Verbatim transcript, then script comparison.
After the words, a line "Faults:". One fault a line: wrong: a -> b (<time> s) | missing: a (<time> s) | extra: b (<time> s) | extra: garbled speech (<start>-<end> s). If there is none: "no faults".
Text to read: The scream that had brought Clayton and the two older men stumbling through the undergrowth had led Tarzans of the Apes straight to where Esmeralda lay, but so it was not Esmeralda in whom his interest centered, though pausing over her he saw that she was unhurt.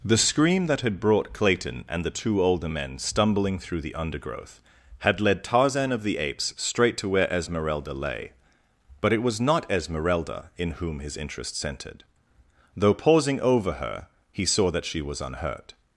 The scream that had brought Clayton and the two older men stumbling through the undergrowth had led Tarzan of the Apes straight to where Esmeralda lay, but it was not Esmeralda in whom his interest centered, though pausing over her he saw that she was unhurt.
Faults:
wrong: Tarzans -> Tarzan (5.4 s)
missing: so (9.1 s)